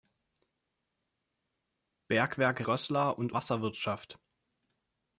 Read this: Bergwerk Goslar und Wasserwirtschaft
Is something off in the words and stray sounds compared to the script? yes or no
no